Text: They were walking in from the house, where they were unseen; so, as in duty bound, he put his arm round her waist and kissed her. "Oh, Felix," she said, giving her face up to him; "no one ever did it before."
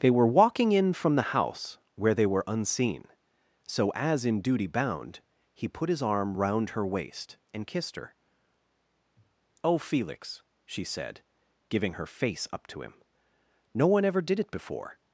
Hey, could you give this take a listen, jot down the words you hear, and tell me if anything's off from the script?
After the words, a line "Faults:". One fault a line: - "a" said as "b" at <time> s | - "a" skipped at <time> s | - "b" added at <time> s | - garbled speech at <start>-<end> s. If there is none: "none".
They were walking in from the house, where they were unseen; so, as in duty bound, he put his arm round her waist and kissed her. "Oh, Felix," she said, giving her face up to him; "no one ever did it before."
Faults:
none